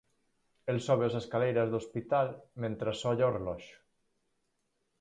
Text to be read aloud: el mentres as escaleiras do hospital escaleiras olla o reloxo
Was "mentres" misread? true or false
true